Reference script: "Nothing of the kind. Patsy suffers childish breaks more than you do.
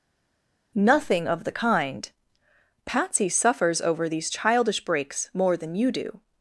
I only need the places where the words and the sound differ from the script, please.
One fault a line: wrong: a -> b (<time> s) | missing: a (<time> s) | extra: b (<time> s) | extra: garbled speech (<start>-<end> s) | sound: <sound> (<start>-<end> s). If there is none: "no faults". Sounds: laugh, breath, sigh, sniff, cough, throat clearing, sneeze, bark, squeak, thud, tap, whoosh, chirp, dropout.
extra: over these (3.8 s)